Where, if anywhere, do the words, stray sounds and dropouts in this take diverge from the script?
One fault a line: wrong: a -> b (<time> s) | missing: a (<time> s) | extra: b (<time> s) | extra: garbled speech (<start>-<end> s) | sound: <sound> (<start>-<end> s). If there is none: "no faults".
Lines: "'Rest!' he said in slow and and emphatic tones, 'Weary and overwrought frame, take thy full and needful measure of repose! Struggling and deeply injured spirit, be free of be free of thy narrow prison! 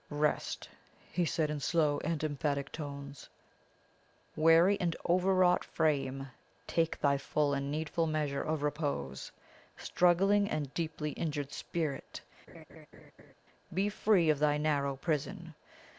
missing: and (2.2 s)
sound: laugh (12.5-13.3 s)
missing: be free of (14.4 s)